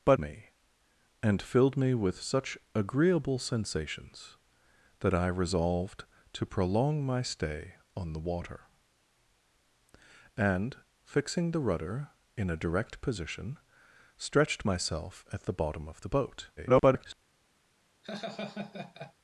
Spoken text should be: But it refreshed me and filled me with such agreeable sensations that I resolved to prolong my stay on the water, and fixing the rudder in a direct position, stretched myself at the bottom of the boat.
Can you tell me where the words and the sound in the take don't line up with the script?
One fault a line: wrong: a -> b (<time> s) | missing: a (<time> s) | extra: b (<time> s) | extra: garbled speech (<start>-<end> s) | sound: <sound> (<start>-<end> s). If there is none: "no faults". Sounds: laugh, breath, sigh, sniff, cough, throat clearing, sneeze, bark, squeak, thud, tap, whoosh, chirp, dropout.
missing: it refreshed (0.2 s)
extra: garbled speech (16.6-17.1 s)
sound: laugh (18.0-19.1 s)